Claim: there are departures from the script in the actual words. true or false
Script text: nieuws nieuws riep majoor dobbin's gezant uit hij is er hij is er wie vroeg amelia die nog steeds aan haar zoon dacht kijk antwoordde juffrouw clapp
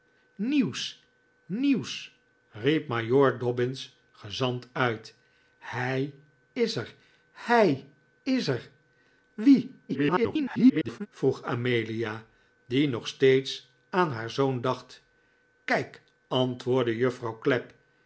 true